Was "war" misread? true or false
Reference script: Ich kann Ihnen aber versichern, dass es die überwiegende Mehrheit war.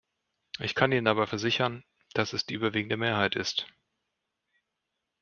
true